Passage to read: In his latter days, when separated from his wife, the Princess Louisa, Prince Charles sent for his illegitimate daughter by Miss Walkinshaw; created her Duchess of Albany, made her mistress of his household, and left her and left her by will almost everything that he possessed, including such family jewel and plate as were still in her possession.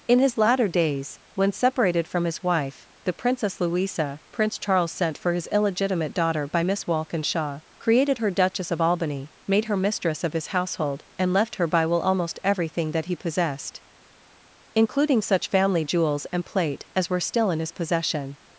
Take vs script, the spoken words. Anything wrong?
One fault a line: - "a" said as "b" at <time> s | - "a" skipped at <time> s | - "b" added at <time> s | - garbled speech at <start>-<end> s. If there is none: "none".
- "and left her" skipped at 11.7 s
- "jewel" said as "jewels" at 15.8 s
- "her" said as "his" at 17.6 s